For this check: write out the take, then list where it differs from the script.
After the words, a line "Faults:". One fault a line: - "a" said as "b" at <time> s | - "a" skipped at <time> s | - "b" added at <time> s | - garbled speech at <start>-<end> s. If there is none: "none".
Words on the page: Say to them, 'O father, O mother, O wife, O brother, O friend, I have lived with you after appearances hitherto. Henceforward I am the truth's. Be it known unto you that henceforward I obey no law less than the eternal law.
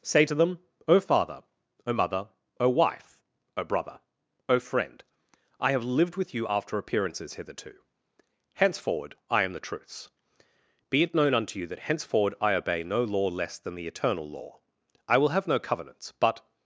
Say to them, 'O father, O mother, O wife, O brother, O friend, I have lived with you after appearances hitherto. Henceforward I am the truth's. Be it known unto you that henceforward I obey no law less than the eternal law. I will have no covenants but
Faults:
- "I will have no covenants but" added at 15.1 s